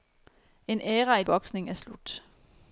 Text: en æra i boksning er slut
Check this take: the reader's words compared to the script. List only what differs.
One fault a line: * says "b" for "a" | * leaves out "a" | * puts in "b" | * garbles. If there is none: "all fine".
all fine